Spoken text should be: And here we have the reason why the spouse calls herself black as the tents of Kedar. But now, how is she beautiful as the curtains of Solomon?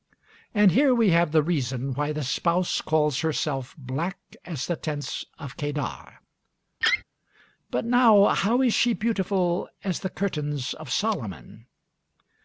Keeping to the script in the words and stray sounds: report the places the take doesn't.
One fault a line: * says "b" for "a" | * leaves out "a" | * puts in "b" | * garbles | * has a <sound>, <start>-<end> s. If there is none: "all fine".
* has a laugh, 6.8-7.0 s